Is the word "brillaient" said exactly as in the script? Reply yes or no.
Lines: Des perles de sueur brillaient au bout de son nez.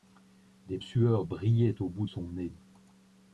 yes